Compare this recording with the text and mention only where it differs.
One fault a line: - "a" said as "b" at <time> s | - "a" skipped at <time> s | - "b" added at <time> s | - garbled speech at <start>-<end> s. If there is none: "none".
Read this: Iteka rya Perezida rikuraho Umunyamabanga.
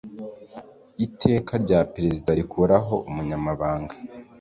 none